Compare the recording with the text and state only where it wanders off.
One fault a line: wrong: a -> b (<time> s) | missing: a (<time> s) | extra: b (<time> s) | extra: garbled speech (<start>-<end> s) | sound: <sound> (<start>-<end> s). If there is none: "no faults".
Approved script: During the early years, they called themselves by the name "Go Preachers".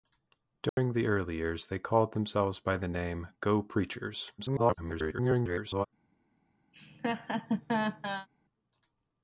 sound: dropout (0.7-0.8 s)
extra: garbled speech (4.4-5.9 s)
sound: laugh (6.7-8.3 s)